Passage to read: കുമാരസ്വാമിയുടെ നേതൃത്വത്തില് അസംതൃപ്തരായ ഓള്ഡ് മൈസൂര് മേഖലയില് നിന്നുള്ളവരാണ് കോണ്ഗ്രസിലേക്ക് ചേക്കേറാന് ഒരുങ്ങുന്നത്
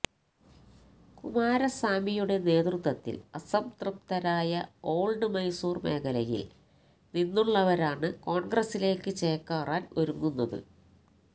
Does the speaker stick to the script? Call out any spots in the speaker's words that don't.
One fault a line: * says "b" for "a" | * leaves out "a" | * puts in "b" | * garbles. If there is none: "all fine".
all fine